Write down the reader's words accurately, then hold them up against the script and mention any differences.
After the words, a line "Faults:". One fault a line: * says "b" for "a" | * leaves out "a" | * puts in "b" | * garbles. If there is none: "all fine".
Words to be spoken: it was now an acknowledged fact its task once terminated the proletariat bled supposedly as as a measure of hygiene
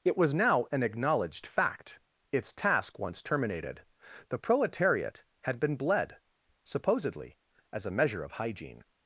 it was now an acknowledged fact its task once terminated the proletariat had been bled supposedly as a measure of hygiene
Faults:
* puts in "had been"
* leaves out "as"